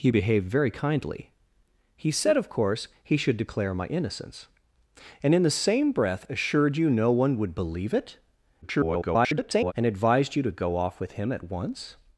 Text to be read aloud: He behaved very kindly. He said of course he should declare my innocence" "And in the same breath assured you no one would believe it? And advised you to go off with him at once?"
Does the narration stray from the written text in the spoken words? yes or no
yes